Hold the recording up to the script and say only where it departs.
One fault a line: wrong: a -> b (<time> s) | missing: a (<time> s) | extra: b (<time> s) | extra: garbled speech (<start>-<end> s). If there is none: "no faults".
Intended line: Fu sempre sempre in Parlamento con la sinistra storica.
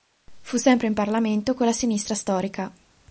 missing: sempre (0.9 s)